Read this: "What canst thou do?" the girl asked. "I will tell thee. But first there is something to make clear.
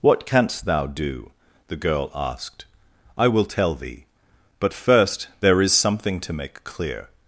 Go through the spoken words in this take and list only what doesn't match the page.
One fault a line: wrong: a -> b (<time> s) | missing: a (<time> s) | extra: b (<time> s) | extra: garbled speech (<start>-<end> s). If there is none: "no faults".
no faults